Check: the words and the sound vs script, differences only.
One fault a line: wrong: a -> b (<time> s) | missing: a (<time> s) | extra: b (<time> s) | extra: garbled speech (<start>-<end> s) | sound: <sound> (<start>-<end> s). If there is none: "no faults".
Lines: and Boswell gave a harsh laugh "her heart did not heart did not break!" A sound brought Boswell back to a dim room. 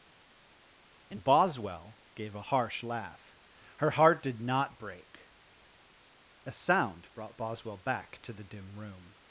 missing: heart did not (4.8 s)
wrong: a -> the (8.3 s)